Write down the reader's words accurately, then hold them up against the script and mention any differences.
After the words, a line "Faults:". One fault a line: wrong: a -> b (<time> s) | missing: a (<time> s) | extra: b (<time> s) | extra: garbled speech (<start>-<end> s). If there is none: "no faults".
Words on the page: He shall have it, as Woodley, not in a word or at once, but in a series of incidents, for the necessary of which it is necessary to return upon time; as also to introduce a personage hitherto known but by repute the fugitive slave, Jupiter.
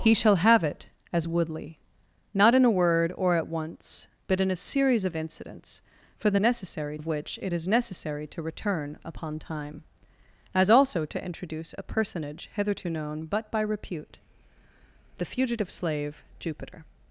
He shall have it, as Woodley, not in a word or at once, but in a series of incidents, for the necessary of which it is necessary to return upon time; as also to introduce a personage hitherto known but by repute the fugitive slave, Jupiter.
Faults:
no faults